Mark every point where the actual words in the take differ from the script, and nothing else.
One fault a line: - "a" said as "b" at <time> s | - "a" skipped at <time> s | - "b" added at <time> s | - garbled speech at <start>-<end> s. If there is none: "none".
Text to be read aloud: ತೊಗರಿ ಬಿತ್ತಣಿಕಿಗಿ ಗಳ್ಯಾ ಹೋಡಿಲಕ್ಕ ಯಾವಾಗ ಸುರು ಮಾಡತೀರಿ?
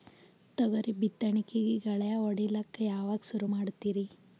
none